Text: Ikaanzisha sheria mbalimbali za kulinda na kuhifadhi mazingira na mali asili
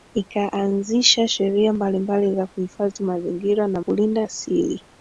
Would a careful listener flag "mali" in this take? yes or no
yes